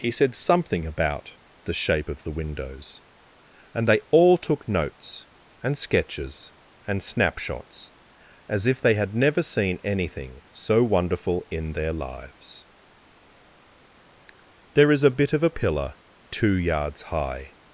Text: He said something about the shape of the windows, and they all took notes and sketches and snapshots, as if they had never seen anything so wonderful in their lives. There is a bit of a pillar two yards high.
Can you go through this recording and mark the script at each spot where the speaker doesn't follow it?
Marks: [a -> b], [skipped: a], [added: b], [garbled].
He said something about the shape of the windows, and they all took notes and sketches and snapshots, as if they had never seen anything so wonderful in their lives. There is a bit of a pillar two yards high.